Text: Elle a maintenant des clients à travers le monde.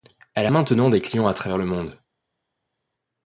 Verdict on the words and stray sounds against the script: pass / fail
pass